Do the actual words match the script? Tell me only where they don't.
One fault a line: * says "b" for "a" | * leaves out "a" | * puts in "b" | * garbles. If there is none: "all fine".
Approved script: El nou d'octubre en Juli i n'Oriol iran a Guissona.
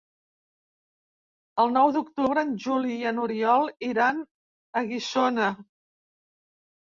all fine